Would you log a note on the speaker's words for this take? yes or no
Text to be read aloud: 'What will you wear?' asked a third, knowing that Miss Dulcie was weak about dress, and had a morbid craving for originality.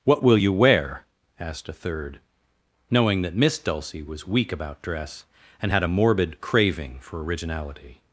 no